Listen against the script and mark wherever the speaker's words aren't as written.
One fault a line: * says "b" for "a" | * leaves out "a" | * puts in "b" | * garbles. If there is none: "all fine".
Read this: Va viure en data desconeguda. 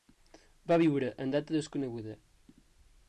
all fine